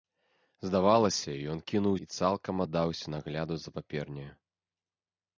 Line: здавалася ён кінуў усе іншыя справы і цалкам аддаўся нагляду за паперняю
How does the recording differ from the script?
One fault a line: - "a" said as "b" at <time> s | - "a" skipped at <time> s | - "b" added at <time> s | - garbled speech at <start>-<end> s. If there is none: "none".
- "усе іншыя справы" skipped at 2.0 s